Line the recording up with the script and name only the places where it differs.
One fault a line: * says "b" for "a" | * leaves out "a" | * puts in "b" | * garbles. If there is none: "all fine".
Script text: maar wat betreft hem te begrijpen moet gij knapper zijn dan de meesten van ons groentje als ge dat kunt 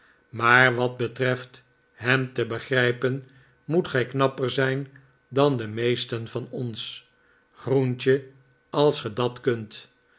all fine